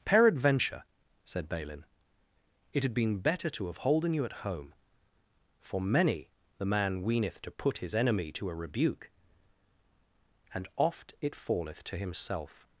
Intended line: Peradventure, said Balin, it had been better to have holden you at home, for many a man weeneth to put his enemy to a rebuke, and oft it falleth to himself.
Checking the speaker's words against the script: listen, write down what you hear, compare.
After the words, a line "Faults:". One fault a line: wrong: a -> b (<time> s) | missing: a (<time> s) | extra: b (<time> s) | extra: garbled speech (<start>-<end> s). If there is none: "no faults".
Peradventure, said Balin, it had been better to have holden you at home, for many the man weeneth to put his enemy to a rebuke, and oft it falleth to himself.
Faults:
wrong: a -> the (6.6 s)